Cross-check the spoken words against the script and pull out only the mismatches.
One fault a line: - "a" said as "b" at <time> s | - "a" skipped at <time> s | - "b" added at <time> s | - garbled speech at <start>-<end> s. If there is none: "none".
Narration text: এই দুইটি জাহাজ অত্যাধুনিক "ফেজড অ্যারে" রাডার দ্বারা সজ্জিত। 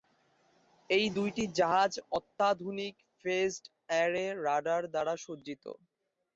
none